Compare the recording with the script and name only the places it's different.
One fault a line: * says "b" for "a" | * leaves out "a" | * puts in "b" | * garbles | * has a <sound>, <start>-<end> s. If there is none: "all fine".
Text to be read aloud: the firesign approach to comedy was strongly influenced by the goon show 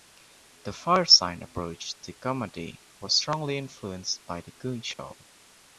* has a dropout, 4.9-5.0 s